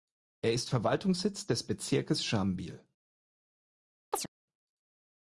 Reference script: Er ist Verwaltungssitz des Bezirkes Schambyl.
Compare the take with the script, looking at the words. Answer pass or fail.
pass